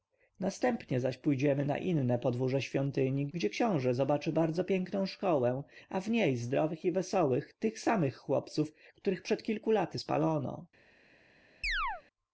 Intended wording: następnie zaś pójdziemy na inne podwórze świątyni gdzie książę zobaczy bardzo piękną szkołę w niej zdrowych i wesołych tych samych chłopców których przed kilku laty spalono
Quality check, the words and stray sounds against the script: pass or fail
fail